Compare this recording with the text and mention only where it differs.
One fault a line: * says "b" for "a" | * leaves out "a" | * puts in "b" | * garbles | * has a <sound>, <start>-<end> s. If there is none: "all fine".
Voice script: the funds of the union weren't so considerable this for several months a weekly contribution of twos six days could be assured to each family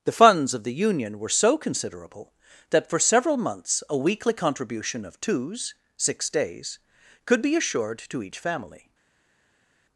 * says "were" for "weren't"
* says "that" for "this"